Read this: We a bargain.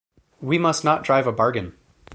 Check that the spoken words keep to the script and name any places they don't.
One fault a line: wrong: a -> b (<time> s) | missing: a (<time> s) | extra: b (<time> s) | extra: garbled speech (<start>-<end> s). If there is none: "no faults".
extra: must not drive (0.6 s)